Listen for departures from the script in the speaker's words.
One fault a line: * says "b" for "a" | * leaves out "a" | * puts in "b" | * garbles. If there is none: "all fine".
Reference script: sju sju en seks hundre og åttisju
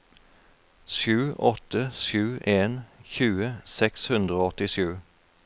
* puts in "åtte"
* puts in "tjue"